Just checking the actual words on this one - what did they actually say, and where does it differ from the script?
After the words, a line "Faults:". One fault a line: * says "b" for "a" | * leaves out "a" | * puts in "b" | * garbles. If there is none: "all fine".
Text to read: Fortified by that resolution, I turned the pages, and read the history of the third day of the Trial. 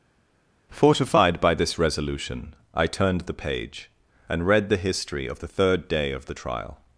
Fortified by this resolution, I turned the page, and read the history of the third day of the Trial.
Faults:
* says "this" for "that"
* says "page" for "pages"